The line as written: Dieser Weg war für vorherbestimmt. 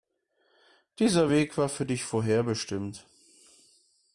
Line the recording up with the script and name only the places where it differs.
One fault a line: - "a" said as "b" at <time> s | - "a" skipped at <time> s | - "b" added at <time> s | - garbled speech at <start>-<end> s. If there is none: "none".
- "dich" added at 1.8 s